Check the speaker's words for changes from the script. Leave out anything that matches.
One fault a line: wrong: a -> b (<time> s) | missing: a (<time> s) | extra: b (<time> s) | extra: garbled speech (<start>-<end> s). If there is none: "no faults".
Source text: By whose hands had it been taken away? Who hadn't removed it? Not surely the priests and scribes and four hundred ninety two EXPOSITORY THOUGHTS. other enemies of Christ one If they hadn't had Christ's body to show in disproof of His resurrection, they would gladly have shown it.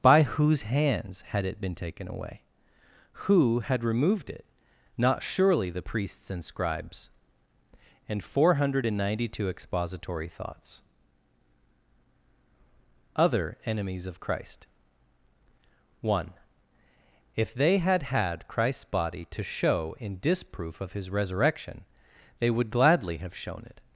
wrong: hadn't -> had (3.6 s)
wrong: hadn't -> had (17.8 s)